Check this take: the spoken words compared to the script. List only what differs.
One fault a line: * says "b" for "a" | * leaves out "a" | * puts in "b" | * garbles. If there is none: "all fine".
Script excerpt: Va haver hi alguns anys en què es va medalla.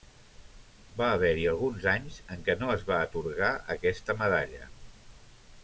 * puts in "no"
* puts in "atorgar aquesta"